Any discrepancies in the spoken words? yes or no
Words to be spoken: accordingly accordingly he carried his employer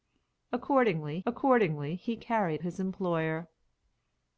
no